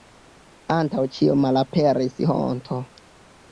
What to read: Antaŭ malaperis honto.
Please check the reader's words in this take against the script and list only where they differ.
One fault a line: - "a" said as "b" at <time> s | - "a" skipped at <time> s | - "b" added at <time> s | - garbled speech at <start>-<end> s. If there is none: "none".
- "ĉio" added at 1.2 s